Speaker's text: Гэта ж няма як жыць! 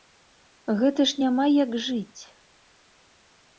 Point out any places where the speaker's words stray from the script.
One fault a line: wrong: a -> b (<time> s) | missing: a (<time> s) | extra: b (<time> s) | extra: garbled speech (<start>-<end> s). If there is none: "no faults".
no faults